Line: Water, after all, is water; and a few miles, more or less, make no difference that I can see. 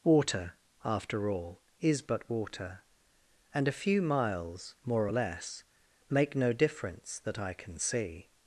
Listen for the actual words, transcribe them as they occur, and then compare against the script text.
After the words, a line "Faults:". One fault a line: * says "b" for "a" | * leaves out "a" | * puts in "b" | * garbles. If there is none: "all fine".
Water, after all, is but water; and a few miles, more or less, make no difference that I can see.
Faults:
* puts in "but"